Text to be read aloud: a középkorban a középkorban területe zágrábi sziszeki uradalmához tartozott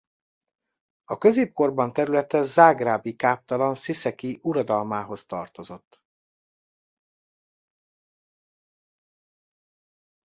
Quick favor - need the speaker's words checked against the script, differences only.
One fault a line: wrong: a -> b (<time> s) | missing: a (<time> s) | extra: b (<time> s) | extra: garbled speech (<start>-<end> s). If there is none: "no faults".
missing: a középkorban (1.9 s)
extra: káptalan (3.1 s)